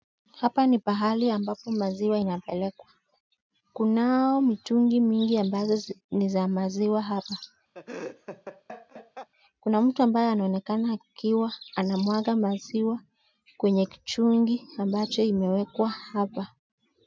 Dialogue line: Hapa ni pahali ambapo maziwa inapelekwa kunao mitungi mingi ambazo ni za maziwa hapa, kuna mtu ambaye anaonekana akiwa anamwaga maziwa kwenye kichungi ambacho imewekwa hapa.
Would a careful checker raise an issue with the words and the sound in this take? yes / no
yes